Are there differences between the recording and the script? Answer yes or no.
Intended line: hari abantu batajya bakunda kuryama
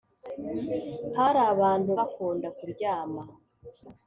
yes